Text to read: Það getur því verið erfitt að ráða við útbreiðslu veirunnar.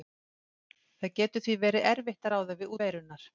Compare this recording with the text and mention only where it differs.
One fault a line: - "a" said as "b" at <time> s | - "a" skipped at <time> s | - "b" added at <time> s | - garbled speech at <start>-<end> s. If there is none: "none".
- "útbreiðslu" skipped at 2.8 s